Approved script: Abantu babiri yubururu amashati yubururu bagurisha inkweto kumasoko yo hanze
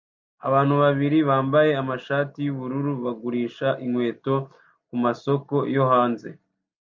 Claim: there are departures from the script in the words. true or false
true